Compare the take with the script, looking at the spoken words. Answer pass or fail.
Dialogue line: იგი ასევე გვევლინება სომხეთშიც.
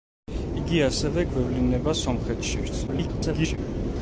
fail